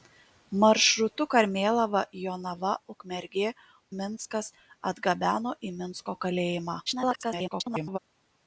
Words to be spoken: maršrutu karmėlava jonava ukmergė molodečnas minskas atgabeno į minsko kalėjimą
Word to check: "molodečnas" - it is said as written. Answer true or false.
false